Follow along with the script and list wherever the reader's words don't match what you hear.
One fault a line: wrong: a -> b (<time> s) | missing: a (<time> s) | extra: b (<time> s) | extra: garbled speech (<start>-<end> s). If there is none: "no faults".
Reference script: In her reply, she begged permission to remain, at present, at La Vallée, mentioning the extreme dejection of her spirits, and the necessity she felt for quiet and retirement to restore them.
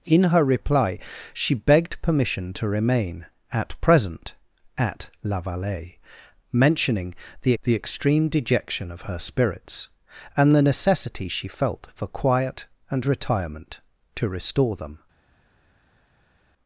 extra: the (7.6 s)